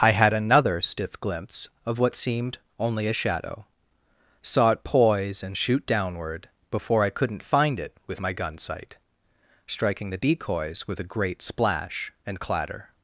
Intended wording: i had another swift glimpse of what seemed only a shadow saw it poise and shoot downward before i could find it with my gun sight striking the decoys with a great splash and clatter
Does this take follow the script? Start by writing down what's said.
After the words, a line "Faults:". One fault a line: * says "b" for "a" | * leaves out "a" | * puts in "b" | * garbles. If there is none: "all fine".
i had another stiff glimpse of what seemed only a shadow saw it poise and shoot downward before i couldn't find it with my gun sight striking the decoys with a great splash and clatter
Faults:
* says "stiff" for "swift"
* says "couldn't" for "could"